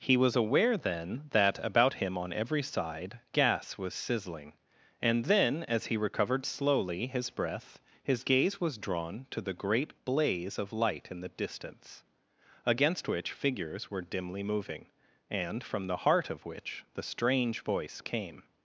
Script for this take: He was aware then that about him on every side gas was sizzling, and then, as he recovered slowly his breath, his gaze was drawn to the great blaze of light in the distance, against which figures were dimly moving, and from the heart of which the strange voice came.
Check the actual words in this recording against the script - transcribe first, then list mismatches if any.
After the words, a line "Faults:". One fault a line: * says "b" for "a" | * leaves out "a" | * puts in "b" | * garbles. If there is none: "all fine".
He was aware then that about him on every side gas was sizzling, and then, as he recovered slowly his breath, his gaze was drawn to the great blaze of light in the distance, against which figures were dimly moving, and from the heart of which the strange voice came.
Faults:
all fine